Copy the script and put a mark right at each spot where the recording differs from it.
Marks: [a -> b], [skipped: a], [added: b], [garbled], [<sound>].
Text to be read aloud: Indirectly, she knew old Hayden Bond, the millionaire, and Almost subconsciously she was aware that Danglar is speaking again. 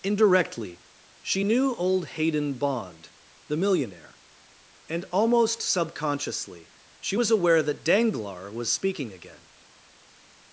Indirectly, she knew old Hayden Bond, the millionaire, and Almost subconsciously she was aware that Danglar [is -> was] speaking again.